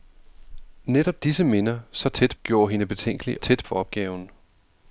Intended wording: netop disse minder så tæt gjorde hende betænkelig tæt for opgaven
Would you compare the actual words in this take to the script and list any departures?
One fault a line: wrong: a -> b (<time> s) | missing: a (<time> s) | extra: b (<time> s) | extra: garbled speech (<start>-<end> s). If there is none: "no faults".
no faults